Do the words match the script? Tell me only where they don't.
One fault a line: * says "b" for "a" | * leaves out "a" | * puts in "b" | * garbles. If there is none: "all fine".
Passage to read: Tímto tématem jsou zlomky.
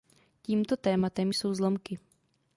all fine